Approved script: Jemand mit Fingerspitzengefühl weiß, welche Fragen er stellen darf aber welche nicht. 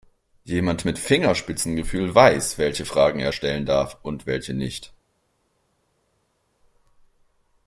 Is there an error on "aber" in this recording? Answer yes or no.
yes